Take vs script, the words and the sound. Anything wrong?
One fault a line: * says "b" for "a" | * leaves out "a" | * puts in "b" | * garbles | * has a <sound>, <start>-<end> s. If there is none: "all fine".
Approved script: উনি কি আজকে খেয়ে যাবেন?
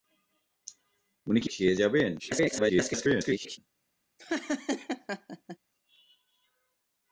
* leaves out "আজকে"
* garbles
* has a laugh, 4.2-5.6 s